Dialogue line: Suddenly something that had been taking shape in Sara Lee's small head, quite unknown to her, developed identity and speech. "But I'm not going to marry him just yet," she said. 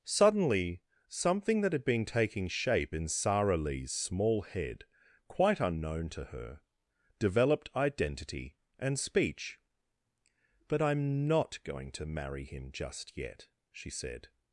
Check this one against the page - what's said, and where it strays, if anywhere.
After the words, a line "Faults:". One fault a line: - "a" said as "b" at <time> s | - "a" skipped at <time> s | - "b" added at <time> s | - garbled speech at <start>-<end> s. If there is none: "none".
Suddenly something that had been taking shape in Sara Lee's small head, quite unknown to her, developed identity and speech. "But I'm not going to marry him just yet," she said.
Faults:
none